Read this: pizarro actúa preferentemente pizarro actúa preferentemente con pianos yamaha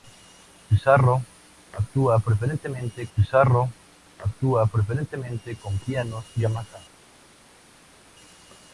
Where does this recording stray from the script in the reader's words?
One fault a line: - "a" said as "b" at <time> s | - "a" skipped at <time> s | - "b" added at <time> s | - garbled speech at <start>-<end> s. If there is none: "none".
none